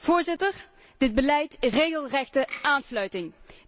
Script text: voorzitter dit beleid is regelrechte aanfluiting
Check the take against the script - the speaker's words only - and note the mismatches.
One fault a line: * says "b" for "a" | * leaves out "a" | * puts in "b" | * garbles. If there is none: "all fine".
all fine